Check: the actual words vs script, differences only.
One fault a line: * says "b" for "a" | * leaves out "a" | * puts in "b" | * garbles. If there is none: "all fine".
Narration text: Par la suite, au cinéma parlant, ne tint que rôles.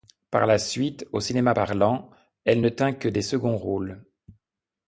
* puts in "elle"
* puts in "des seconds"